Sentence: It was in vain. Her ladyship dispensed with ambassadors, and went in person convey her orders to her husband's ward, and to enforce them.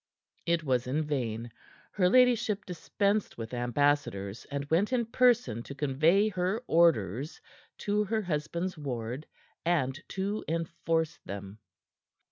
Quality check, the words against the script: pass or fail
fail